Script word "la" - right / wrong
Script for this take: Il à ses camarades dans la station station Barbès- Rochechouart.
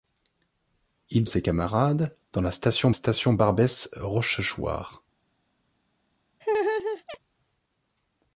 right